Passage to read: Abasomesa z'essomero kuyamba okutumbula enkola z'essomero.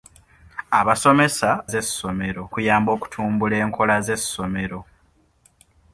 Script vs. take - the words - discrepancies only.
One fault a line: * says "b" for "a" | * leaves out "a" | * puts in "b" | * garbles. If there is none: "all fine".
all fine